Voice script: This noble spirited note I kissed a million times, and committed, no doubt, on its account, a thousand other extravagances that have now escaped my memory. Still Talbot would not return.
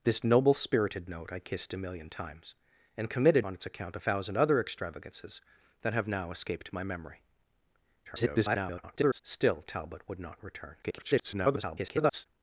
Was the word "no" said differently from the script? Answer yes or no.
yes